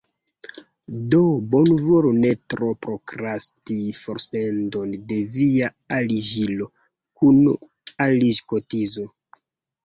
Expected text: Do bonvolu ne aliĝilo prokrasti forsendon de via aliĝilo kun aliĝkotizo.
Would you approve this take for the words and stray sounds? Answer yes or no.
no